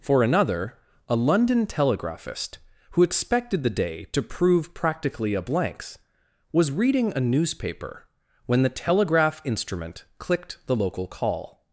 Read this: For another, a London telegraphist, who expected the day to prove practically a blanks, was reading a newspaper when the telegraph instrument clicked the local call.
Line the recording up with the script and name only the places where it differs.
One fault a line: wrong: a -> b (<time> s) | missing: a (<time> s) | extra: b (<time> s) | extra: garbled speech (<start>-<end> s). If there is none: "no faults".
no faults